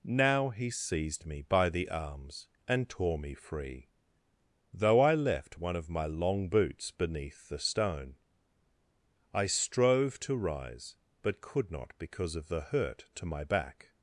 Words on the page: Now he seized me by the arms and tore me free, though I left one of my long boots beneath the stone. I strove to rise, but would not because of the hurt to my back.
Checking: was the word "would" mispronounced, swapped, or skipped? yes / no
yes